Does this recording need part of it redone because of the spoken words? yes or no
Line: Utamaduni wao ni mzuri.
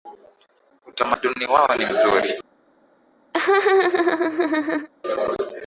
no